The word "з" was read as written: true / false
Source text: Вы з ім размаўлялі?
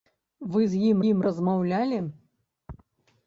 true